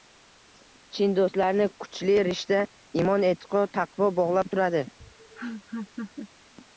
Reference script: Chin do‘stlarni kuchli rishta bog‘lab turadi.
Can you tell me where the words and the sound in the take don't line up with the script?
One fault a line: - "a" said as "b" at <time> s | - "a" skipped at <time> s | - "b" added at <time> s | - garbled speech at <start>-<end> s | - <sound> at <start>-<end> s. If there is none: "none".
- "imon e'tiqod taqvo" added at 3.0 s
- laugh at 5.0-6.3 s